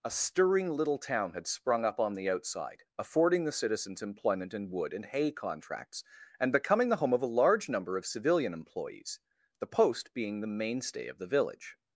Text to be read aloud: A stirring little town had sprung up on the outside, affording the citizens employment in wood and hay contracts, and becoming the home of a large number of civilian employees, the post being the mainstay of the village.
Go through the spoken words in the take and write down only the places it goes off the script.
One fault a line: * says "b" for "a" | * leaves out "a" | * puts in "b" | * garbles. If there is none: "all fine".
all fine